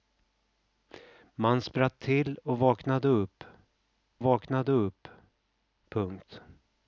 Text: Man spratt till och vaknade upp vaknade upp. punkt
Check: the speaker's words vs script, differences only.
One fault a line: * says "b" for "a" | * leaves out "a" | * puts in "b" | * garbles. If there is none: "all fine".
all fine